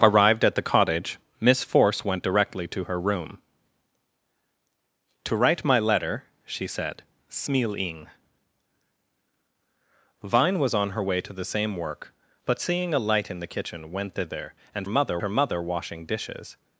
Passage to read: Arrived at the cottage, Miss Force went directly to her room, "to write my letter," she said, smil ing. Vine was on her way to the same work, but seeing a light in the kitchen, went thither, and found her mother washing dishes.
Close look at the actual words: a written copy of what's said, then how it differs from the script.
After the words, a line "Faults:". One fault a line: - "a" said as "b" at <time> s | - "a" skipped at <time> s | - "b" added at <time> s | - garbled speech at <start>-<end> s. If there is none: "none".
Arrived at the cottage, Miss Force went directly to her room, "to write my letter," she said, smil ing. Vine was on her way to the same work, but seeing a light in the kitchen, went thither, and mother her mother washing dishes.
Faults:
- "found" said as "mother" at 14.9 s